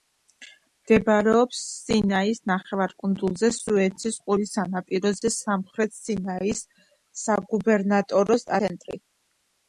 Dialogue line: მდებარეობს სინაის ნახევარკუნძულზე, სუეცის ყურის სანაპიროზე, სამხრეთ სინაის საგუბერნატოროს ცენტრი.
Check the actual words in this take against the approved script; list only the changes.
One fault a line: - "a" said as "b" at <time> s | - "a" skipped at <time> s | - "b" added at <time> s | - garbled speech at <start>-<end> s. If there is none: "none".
none